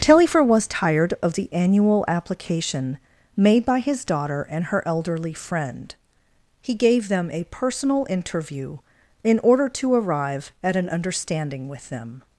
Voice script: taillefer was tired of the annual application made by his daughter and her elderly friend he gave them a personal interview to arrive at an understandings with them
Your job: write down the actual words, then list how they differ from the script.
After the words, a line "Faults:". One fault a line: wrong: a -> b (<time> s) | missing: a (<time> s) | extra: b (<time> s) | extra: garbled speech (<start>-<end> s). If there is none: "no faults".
taillefer was tired of the annual application made by his daughter and her elderly friend he gave them a personal interview in order to arrive at an understanding with them
Faults:
extra: in order (9.2 s)
wrong: understandings -> understanding (10.9 s)